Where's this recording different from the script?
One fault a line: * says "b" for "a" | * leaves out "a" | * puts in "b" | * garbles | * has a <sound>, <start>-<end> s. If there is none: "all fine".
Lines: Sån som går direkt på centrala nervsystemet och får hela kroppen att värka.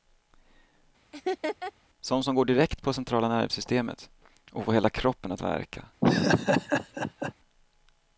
* has a laugh, 1.1-1.7 s
* has a laugh, 6.0-7.3 s